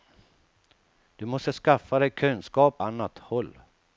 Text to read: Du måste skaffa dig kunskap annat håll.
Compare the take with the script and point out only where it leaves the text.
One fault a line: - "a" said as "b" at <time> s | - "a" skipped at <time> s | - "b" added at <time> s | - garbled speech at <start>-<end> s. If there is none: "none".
none